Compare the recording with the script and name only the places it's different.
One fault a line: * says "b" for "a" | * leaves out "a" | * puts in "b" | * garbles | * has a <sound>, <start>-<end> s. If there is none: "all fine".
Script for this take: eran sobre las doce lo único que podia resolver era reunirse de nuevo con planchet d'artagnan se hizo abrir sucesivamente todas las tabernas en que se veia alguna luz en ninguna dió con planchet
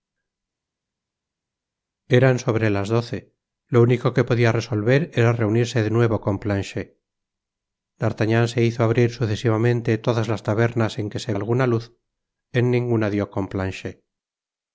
* leaves out "veia"